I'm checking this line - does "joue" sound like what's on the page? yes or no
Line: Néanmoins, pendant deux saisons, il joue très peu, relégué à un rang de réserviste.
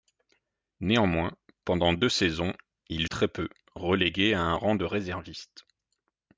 no